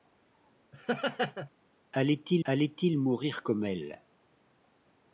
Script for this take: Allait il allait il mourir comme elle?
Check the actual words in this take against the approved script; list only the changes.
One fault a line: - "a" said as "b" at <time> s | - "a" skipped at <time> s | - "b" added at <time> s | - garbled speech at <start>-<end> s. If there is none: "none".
none